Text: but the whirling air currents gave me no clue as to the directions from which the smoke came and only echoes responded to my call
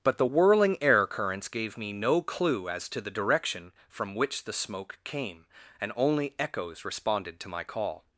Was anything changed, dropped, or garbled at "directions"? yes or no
yes